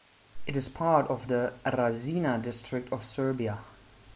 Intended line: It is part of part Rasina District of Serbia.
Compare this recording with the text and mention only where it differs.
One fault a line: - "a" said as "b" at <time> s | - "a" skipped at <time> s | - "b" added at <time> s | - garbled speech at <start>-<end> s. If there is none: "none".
- "part" said as "the" at 1.3 s